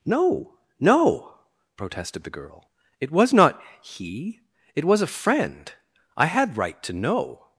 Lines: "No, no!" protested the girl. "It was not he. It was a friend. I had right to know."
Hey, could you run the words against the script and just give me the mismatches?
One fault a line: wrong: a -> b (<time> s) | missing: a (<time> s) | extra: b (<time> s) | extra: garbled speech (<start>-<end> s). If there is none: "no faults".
no faults